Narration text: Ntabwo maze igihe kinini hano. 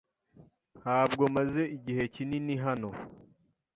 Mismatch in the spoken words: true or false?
false